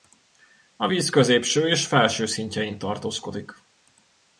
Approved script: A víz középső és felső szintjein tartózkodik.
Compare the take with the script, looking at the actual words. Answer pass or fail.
pass